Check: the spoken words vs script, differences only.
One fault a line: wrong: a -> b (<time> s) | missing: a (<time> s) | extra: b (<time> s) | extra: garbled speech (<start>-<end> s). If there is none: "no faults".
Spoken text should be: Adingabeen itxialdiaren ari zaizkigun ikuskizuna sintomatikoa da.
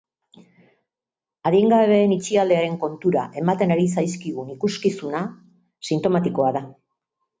extra: kontura ematen (2.9 s)